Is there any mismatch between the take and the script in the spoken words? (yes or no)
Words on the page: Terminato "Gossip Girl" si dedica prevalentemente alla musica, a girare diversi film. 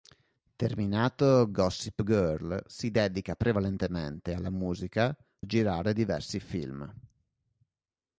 no